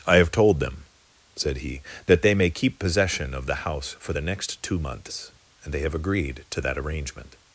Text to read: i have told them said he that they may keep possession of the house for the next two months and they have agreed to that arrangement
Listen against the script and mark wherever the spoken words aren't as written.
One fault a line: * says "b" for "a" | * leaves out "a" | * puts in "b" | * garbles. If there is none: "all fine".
all fine